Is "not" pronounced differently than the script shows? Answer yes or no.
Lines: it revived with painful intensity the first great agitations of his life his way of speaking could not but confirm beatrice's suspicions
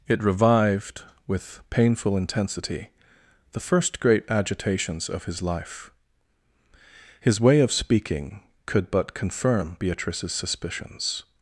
yes